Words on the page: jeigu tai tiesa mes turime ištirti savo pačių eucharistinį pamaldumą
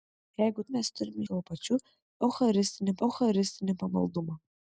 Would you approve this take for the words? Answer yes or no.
no